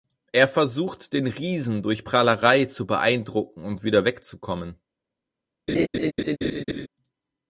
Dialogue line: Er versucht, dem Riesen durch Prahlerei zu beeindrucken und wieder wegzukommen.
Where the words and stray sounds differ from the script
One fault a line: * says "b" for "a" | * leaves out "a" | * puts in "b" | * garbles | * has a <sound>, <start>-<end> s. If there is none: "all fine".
* says "den" for "dem"
* has a laugh, 5.7-6.9 s